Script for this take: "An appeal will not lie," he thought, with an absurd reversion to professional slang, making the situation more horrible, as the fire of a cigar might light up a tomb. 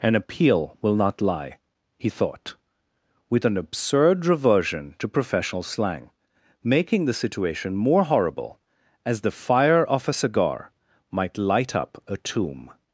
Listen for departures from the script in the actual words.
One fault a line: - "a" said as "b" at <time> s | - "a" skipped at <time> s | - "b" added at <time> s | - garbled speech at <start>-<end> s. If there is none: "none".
none